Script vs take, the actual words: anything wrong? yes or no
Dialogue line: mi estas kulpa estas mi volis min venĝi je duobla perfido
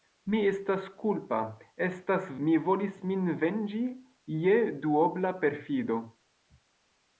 no